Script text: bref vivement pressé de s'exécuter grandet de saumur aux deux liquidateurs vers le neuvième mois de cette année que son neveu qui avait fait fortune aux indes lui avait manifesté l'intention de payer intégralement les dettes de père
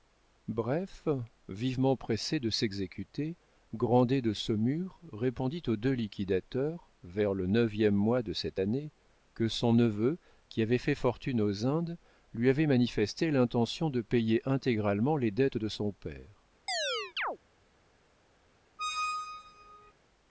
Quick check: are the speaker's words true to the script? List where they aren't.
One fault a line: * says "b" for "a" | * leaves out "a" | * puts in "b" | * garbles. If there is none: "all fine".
* puts in "répondit"
* puts in "son"